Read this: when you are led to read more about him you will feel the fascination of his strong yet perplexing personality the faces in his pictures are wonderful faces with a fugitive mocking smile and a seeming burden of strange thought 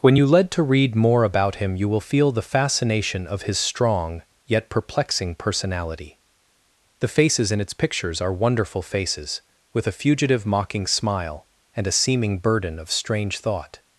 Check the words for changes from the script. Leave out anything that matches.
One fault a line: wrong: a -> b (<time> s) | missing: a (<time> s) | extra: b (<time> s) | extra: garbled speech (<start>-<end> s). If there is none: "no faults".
missing: are (0.3 s)
wrong: his -> its (7.6 s)